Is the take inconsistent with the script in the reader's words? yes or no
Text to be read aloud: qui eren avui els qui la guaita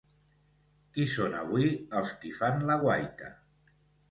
yes